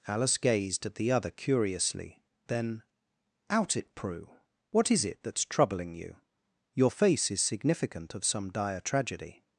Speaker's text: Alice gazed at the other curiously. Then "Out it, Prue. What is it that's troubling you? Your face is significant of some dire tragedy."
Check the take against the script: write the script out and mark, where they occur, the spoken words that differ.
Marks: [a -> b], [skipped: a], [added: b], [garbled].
Alice gazed at the other curiously. Then "Out it, Prue. What is it that's troubling you? Your face is significant of some dire tragedy."